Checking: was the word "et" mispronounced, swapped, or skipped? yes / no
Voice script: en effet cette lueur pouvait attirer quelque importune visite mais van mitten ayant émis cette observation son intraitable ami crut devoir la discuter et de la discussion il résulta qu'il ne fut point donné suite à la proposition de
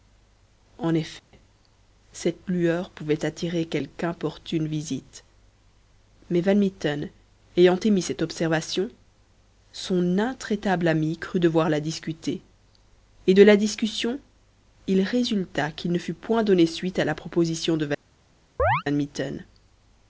no